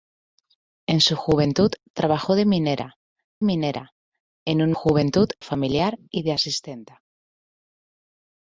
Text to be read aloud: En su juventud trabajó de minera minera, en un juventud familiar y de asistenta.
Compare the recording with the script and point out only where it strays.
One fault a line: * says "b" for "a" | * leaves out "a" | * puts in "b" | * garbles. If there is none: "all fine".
all fine